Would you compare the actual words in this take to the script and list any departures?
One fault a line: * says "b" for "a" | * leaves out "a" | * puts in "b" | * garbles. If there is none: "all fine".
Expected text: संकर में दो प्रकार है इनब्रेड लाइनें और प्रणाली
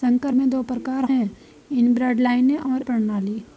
all fine